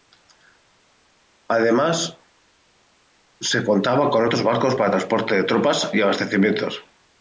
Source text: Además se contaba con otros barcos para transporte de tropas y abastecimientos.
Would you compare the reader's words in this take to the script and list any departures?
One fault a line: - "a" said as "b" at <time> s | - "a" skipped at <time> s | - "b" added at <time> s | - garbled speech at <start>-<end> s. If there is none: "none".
none